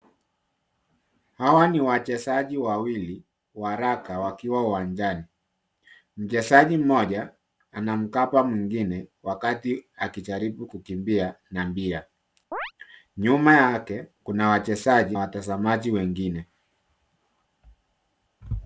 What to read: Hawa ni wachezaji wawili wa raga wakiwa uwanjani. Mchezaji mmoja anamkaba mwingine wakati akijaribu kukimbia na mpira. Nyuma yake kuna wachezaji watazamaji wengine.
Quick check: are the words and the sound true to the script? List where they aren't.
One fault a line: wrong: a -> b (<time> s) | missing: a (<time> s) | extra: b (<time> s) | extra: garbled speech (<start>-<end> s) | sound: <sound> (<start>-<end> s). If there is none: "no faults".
sound: chirp (12.5-12.7 s)